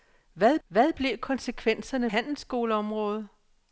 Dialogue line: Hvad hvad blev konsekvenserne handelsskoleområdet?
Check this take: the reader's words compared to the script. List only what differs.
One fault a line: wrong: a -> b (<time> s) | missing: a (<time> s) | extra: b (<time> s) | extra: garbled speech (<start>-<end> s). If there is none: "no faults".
no faults